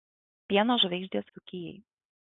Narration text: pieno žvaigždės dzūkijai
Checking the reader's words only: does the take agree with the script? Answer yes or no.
yes